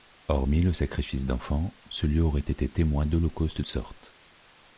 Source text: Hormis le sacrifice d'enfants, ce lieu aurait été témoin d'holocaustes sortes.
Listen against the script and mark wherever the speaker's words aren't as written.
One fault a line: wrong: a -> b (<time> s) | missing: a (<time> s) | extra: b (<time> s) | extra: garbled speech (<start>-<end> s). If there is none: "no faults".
no faults